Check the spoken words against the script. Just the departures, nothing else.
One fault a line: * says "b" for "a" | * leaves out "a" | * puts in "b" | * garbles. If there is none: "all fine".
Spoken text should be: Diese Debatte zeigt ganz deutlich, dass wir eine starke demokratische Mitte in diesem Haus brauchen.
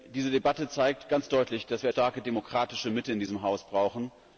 * leaves out "eine"